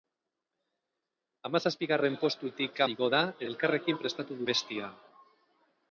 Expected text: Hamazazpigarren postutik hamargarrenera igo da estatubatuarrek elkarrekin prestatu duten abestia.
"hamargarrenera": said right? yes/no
no